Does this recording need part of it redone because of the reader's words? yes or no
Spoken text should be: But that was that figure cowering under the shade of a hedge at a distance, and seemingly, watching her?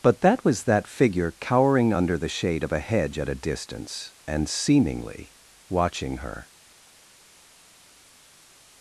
no